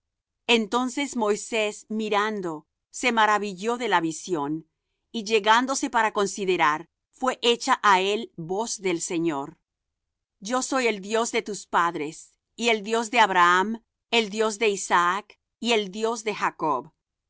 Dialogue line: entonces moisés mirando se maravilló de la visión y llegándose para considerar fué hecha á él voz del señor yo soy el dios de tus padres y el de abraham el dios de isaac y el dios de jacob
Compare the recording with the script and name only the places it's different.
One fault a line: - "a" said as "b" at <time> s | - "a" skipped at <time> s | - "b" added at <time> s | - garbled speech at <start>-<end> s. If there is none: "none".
- "dios" added at 12.8 s